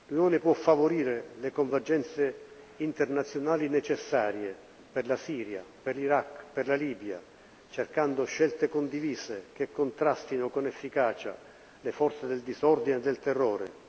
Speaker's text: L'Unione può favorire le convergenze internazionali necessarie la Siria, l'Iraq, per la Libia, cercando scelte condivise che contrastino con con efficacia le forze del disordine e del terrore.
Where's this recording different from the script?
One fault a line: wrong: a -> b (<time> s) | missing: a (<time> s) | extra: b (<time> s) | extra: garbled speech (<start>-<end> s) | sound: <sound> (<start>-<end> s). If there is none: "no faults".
extra: per (4.9 s)
extra: per (5.8 s)
missing: con (10.7 s)